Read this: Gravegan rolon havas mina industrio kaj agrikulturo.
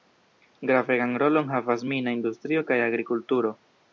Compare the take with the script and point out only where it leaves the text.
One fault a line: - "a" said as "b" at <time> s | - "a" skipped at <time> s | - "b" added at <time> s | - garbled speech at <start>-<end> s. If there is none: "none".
none